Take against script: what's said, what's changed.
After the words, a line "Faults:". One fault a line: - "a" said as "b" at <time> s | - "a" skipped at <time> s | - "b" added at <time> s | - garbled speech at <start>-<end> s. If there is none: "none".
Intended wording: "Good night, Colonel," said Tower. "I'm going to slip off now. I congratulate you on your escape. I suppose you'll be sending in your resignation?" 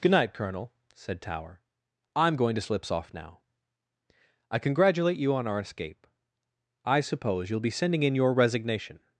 "Good night, Colonel," said Tower. "I'm going to slips off now. I congratulate you on our escape. I suppose you'll be sending in your resignation?"
Faults:
- "slip" said as "slips" at 2.6 s
- "your" said as "our" at 5.4 s